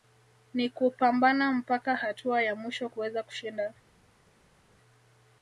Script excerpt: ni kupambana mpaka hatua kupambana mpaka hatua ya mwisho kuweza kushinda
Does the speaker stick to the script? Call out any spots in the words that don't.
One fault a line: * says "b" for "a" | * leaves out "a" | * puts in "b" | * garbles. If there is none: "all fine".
* leaves out "kupambana mpaka hatua"